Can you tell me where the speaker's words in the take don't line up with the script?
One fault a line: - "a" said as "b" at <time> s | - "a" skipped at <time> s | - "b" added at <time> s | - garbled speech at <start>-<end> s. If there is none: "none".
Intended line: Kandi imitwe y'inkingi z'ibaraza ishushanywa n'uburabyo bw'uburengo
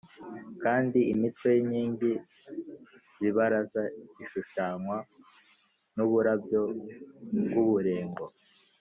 none